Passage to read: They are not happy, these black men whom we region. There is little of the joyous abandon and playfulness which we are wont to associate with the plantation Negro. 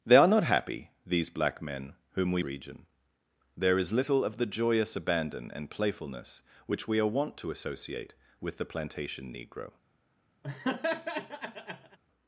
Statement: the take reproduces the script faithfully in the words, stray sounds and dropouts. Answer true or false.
false